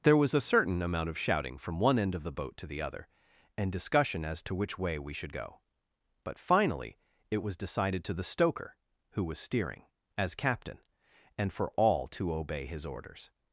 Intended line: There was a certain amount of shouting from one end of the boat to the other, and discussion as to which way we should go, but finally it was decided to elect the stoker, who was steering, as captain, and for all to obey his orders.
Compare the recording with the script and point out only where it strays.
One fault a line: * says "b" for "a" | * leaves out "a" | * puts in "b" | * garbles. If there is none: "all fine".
* leaves out "elect"